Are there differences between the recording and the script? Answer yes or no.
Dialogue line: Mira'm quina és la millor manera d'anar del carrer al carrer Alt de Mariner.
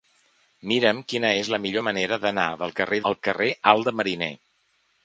no